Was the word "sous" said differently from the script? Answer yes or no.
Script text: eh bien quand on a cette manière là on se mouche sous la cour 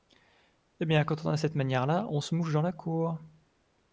yes